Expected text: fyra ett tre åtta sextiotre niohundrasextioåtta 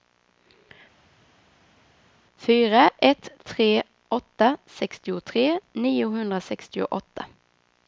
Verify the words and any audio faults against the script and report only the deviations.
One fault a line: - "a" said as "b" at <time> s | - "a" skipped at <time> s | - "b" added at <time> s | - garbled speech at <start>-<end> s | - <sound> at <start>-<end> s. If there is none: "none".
none